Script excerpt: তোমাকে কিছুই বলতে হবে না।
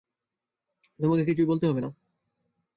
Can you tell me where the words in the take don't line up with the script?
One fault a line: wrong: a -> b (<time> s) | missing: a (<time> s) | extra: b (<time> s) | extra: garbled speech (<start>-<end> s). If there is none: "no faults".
no faults